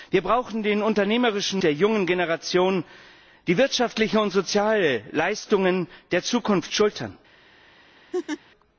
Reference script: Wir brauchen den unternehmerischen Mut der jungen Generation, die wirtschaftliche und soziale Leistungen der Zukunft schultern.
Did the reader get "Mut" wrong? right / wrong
wrong